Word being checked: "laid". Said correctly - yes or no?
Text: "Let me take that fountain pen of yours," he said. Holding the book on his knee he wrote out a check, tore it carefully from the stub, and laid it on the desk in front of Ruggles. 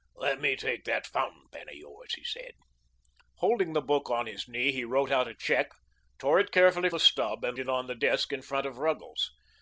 no